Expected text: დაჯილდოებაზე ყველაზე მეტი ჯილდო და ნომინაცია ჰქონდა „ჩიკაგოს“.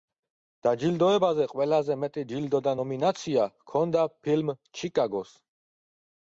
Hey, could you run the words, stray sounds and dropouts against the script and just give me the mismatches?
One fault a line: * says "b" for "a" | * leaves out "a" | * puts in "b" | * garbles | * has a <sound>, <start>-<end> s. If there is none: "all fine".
* puts in "ფილმ"